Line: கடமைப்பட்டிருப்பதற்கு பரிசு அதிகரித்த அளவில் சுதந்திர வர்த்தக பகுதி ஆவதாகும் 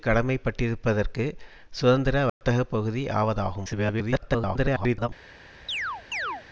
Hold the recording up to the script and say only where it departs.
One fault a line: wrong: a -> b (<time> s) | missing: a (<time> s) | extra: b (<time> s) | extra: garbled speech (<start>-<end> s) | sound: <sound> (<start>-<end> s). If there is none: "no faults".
missing: பரிசு அதிகரித்த அளவில் (1.2 s)
sound: dropout (2.3-2.4 s)
extra: garbled speech (3.6-5.1 s)
sound: chirp (5.7-6.4 s)